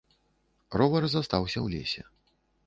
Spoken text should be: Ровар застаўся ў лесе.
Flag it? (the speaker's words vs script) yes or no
no